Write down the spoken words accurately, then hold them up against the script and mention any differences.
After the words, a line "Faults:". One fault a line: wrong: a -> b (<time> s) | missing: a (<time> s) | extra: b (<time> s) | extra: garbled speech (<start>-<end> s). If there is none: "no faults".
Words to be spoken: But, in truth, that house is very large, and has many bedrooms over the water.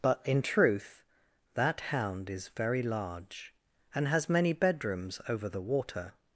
But, in truth, that hound is very large, and has many bedrooms over the water.
Faults:
wrong: house -> hound (1.8 s)